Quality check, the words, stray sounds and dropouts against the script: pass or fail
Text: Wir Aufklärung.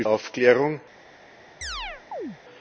fail